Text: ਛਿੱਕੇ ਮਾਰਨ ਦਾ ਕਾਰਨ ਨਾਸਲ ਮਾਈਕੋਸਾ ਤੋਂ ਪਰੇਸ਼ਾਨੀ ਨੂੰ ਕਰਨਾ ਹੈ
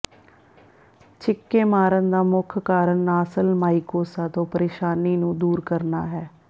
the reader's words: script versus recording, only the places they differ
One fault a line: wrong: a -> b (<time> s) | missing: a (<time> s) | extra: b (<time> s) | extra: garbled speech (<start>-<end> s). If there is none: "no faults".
extra: ਮੁੱਖ (2.2 s)
extra: ਦੂਰ (5.4 s)